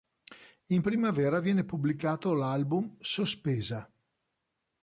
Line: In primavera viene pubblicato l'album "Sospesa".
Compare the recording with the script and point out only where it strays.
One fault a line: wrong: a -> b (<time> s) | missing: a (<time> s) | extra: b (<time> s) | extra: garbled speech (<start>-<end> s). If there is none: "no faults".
no faults